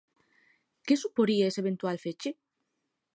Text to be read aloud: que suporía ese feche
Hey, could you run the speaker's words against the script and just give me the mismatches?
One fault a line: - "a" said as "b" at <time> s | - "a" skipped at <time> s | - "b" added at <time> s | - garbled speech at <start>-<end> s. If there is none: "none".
- "eventual" added at 1.6 s